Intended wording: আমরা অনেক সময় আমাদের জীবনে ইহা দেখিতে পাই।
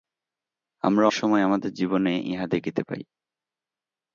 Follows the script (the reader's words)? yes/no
no